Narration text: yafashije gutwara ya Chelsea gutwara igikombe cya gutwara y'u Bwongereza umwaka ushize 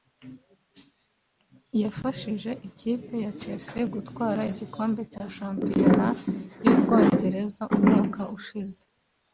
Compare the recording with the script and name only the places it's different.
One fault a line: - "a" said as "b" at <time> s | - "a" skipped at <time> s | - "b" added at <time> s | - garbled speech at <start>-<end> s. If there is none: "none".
- "gutwara" said as "ikipe" at 2.7 s
- "gutwara" said as "shampiyona" at 5.4 s